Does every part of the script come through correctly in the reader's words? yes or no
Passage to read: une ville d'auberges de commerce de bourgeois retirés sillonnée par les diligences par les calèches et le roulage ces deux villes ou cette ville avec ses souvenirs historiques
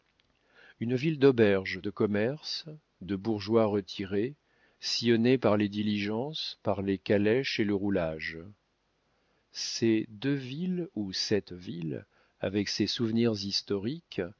yes